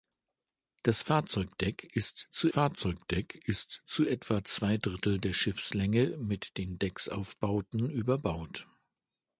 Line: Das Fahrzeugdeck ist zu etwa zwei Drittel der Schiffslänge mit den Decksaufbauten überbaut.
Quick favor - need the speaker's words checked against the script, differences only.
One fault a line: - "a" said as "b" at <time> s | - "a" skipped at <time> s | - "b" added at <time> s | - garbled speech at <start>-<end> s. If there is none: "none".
- "Fahrzeugdeck ist zu" added at 2.5 s